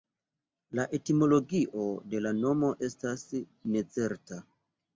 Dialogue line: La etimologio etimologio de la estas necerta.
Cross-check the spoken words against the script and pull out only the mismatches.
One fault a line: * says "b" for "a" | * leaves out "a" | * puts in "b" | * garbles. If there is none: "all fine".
* leaves out "etimologio"
* puts in "nomo"